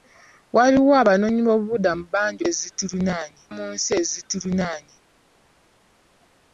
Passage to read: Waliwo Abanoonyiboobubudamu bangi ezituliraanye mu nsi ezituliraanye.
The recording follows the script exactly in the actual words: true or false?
true